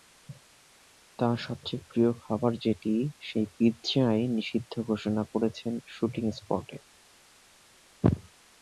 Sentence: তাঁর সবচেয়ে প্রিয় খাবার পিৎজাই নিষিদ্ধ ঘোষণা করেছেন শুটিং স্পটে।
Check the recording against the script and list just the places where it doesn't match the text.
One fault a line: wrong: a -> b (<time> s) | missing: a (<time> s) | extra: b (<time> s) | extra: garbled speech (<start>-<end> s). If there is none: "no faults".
extra: যেটি সেই (2.6 s)